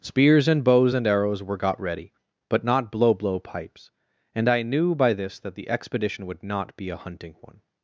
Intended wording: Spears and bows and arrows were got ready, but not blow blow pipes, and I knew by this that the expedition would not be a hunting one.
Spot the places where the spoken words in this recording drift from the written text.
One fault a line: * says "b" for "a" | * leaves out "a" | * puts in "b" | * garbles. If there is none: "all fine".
all fine